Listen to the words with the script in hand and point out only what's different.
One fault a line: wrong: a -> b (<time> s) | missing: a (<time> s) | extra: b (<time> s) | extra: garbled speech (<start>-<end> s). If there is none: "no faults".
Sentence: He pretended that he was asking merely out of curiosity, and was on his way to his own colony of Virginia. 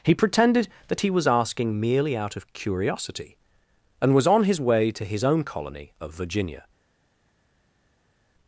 no faults